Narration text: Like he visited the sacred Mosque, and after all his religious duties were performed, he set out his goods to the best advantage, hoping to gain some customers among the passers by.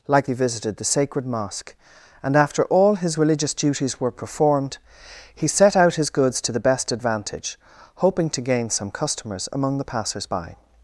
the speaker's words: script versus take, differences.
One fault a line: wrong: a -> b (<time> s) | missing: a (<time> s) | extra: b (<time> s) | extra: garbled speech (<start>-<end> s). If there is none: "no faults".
no faults